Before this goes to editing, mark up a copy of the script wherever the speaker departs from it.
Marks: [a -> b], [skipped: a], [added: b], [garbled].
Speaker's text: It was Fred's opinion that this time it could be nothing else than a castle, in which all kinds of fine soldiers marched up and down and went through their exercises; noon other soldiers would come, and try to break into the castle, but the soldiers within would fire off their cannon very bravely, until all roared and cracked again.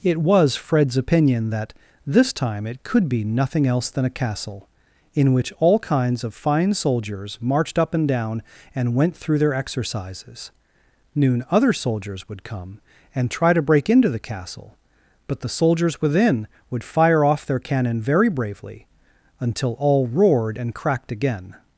It was Fred's opinion that this time it could be nothing else than a castle, in which all kinds of fine soldiers marched up and down and went through their exercises; noon other soldiers would come, and try to break into the castle, but the soldiers within would fire off their cannon very bravely, until all roared and cracked again.